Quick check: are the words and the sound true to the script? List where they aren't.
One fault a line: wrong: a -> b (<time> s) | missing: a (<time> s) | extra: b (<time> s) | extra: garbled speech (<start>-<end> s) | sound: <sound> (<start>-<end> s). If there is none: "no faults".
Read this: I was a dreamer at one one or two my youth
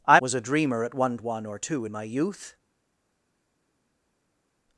no faults